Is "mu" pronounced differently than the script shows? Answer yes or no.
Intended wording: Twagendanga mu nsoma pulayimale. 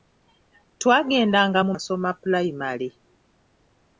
no